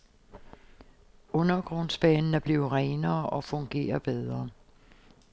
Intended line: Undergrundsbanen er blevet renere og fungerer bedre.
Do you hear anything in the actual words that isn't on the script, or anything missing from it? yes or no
no